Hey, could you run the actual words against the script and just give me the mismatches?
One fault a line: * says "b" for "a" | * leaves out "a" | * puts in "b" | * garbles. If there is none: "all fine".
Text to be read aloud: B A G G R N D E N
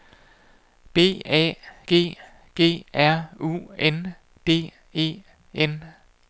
* puts in "U"